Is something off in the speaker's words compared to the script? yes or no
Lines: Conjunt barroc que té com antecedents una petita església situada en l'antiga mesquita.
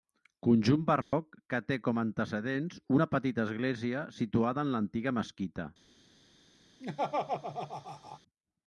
no